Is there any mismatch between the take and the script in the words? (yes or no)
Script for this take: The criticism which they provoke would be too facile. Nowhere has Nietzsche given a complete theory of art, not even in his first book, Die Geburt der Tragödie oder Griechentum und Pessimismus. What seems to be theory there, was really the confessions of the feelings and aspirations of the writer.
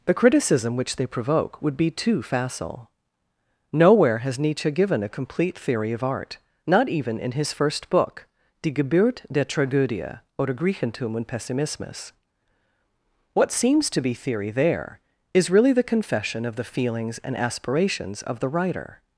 yes